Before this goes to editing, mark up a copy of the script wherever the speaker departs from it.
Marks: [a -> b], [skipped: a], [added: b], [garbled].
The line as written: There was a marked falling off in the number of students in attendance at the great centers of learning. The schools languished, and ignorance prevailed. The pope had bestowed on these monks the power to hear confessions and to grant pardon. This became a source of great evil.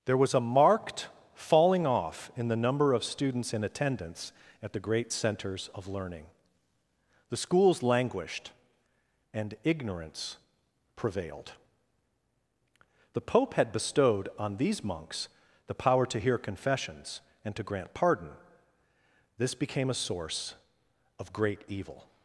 There was a marked falling off in the number of students in attendance at the great centers of learning. The schools languished, and ignorance prevailed. The pope had bestowed on these monks the power to hear confessions and to grant pardon. This became a source of great evil.